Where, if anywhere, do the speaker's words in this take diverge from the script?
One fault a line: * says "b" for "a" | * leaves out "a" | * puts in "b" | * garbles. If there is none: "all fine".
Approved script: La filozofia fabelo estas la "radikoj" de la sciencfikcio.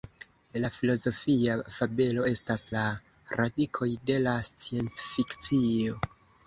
all fine